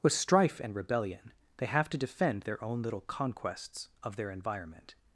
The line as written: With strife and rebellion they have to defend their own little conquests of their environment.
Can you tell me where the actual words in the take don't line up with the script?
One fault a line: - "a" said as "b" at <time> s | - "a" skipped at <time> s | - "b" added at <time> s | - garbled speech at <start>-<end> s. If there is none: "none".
none